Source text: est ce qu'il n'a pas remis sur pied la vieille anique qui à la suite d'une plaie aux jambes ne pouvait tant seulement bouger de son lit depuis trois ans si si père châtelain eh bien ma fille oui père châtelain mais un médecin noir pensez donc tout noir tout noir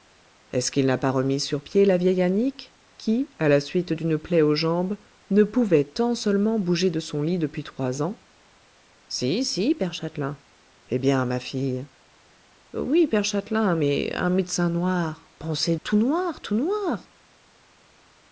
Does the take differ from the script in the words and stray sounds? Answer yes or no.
yes